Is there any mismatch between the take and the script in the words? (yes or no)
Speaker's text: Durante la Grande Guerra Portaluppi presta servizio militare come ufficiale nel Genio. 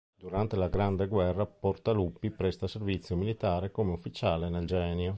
no